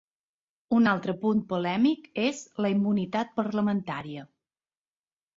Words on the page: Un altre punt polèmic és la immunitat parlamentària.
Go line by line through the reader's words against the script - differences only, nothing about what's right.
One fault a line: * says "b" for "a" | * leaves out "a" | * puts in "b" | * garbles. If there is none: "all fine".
all fine